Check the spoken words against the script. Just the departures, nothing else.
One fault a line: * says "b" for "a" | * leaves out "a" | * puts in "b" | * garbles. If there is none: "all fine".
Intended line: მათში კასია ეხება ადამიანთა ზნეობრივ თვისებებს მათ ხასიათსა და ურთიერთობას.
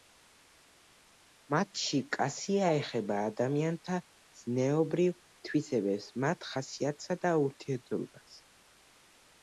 all fine